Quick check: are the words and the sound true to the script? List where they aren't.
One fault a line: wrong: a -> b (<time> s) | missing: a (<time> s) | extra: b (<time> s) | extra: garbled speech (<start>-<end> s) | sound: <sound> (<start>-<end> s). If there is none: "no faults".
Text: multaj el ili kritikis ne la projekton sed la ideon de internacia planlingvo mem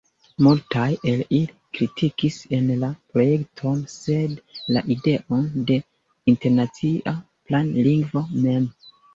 no faults